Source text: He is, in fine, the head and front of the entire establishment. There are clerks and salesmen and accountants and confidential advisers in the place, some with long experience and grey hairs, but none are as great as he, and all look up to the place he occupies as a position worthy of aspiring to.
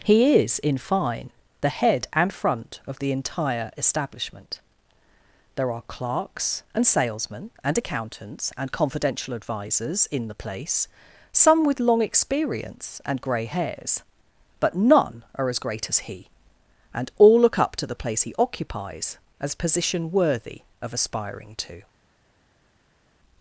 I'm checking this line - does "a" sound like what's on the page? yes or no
no